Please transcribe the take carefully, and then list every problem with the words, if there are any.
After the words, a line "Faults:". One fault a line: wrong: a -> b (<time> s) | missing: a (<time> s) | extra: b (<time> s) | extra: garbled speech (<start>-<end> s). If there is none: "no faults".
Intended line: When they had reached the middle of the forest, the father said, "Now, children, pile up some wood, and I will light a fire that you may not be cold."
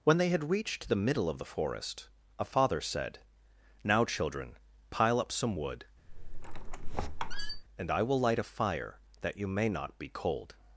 When they had reached the middle of the forest, a father said, "Now, children, pile up some wood, and I will light a fire that you may not be cold."
Faults:
wrong: the -> a (2.4 s)